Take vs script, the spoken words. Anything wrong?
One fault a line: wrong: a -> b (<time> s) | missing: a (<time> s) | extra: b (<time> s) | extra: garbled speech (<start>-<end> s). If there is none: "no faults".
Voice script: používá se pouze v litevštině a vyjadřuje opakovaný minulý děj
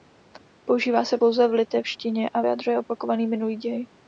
no faults